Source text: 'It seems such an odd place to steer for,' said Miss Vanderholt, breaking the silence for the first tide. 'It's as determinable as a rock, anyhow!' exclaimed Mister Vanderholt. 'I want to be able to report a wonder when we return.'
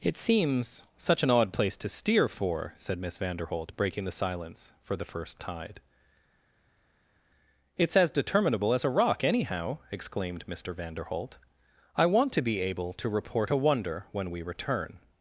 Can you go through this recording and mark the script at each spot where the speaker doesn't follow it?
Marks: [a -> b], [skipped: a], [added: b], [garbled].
'It seems such an odd place to steer for,' said Miss Vanderholt, breaking the silence for the first tide. 'It's as determinable as a rock, anyhow!' exclaimed Mister Vanderholt. 'I want to be able to report a wonder when we return.'